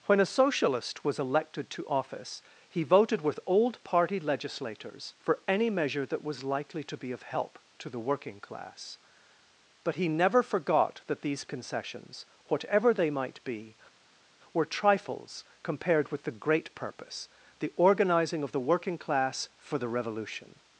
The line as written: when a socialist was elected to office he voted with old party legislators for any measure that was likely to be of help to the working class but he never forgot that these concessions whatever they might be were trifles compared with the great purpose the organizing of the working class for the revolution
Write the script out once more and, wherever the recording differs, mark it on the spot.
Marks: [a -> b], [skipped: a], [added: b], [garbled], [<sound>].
when a socialist was elected to office he voted with old party legislators for any measure that was likely to be of help to the working class but he never forgot that these concessions whatever they might be were trifles compared with the great purpose the organizing of the working class for the revolution